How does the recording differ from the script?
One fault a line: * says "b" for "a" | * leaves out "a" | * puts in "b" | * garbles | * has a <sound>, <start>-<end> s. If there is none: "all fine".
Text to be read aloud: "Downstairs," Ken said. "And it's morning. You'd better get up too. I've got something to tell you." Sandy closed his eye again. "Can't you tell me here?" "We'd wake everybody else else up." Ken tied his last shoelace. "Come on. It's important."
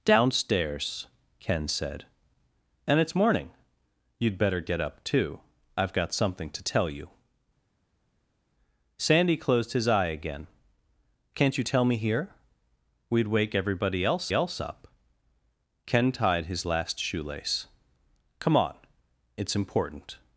all fine